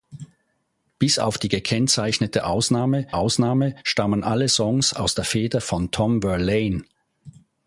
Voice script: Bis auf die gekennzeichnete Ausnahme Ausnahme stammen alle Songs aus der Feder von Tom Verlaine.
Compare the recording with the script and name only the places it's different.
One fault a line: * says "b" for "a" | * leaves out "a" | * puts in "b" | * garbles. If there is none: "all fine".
all fine